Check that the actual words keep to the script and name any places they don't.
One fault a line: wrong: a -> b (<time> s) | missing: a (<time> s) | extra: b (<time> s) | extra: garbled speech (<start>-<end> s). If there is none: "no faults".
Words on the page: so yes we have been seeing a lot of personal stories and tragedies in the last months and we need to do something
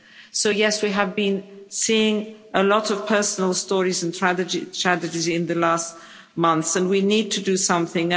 no faults